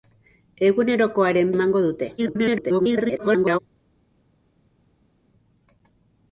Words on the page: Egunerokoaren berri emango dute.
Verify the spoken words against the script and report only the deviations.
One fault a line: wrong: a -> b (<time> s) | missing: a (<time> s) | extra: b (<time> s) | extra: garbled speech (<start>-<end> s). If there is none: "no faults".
missing: berri (1.5 s)
extra: garbled speech (2.2-3.6 s)